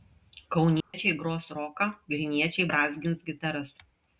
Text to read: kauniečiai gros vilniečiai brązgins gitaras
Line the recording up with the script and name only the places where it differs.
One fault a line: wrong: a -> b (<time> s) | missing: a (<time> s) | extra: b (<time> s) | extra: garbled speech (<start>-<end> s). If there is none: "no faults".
extra: roką (1.6 s)